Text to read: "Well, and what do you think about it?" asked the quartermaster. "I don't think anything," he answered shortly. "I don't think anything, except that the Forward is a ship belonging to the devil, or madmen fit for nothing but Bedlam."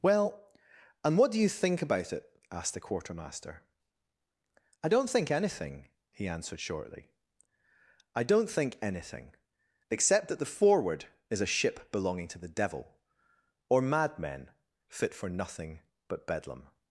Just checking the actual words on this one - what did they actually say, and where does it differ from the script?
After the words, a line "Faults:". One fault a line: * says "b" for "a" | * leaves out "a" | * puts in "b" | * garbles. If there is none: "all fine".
"Well, and what do you think about it?" asked the quartermaster. "I don't think anything," he answered shortly. "I don't think anything, except that the Forward is a ship belonging to the devil, or madmen fit for nothing but Bedlam."
Faults:
all fine